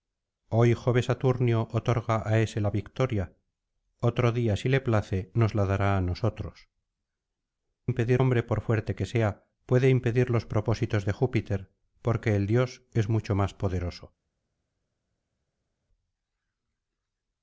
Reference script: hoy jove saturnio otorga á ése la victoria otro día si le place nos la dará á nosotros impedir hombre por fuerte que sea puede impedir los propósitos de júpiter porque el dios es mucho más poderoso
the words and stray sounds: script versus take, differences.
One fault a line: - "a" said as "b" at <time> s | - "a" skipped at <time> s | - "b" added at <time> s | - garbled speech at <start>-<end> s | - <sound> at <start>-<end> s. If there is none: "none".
none